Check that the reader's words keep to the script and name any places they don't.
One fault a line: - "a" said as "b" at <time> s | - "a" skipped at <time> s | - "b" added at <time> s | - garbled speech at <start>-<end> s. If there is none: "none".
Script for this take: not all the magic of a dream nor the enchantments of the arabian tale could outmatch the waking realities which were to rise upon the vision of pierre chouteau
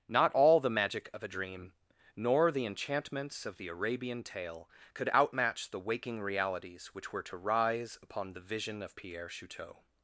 none